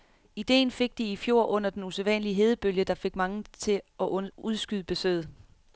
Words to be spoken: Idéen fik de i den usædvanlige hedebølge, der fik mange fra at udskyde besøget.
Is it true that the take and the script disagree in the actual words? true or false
true